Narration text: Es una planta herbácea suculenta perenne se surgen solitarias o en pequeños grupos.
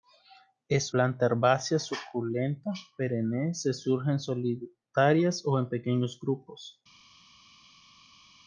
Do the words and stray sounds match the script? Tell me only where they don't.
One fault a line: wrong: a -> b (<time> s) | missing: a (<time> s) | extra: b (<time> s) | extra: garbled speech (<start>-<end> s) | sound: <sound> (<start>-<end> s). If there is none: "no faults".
missing: una (0.9 s)